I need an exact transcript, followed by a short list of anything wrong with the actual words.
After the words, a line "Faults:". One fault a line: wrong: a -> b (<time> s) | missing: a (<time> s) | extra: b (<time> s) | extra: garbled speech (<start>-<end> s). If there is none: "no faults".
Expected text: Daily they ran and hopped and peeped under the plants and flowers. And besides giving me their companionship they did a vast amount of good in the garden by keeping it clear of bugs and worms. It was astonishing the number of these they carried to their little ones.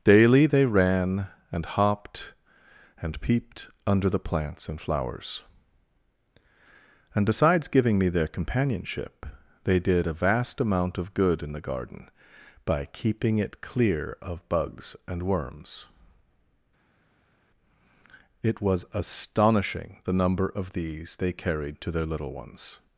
Daily they ran and hopped and peeped under the plants and flowers. And besides giving me their companionship they did a vast amount of good in the garden by keeping it clear of bugs and worms. It was astonishing the number of these they carried to their little ones.
Faults:
no faults